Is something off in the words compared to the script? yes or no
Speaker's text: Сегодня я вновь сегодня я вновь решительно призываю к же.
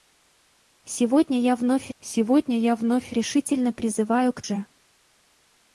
no